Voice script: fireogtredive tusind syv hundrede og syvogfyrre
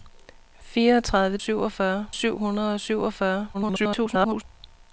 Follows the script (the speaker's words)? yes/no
no